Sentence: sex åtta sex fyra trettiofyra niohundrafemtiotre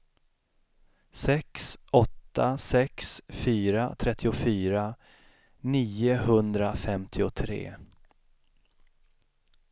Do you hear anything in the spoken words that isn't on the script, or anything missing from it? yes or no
no